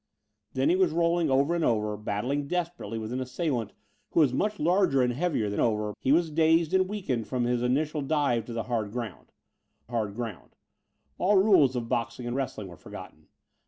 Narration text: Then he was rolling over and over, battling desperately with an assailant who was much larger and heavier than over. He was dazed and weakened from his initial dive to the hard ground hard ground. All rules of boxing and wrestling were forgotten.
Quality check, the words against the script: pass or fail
pass